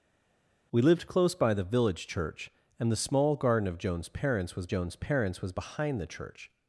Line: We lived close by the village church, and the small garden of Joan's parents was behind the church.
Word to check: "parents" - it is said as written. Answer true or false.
true